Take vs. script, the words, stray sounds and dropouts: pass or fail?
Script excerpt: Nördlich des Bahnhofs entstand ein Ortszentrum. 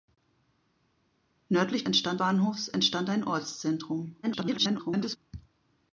fail